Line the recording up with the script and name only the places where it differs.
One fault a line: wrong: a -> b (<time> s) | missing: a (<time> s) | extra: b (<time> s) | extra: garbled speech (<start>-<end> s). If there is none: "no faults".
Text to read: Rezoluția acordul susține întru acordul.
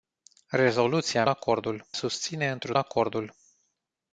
no faults